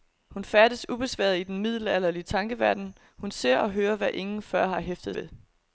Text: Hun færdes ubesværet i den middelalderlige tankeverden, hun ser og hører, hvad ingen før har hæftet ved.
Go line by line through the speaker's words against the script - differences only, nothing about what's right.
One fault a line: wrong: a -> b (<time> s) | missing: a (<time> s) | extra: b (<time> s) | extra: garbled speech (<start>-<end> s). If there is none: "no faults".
no faults